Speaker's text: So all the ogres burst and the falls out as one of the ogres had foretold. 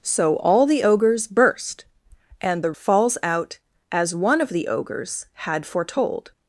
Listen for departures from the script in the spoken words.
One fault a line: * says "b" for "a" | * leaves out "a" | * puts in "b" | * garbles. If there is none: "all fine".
all fine